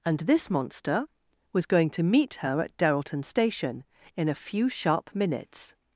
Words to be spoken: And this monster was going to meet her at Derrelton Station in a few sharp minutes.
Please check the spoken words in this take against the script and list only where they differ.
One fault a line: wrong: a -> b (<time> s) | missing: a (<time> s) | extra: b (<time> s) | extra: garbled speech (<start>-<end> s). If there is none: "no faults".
no faults